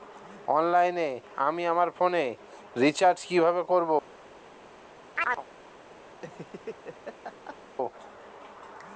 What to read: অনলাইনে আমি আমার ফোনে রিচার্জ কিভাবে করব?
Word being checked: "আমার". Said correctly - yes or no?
yes